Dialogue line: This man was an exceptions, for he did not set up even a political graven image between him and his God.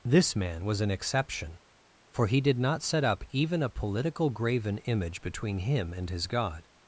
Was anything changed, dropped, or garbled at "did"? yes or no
no